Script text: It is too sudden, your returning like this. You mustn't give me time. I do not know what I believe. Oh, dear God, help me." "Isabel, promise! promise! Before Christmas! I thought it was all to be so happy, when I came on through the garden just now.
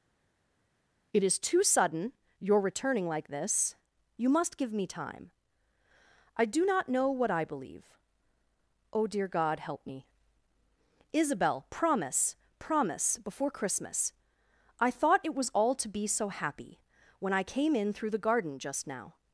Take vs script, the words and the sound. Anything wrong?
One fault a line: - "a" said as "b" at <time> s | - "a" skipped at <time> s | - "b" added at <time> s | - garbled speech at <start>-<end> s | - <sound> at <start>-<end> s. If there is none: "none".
- "mustn't" said as "must" at 4.3 s
- "on" said as "in" at 17.7 s